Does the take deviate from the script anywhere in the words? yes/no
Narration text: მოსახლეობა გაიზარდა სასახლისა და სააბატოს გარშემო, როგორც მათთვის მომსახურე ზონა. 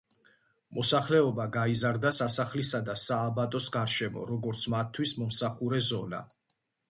no